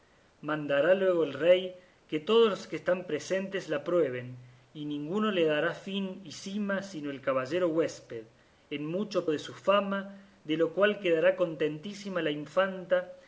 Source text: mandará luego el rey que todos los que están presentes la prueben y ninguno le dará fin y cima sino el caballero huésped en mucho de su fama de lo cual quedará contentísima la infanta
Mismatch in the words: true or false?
false